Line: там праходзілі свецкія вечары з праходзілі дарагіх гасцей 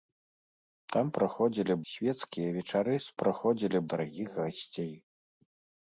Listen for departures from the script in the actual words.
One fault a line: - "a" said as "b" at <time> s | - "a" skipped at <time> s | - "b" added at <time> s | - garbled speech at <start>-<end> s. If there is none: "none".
none